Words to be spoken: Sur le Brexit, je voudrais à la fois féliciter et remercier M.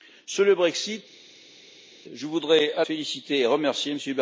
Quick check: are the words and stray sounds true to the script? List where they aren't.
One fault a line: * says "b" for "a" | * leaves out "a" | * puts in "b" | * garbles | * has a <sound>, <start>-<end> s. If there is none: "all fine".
* leaves out "la fois"